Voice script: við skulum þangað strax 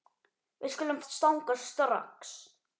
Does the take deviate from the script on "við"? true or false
false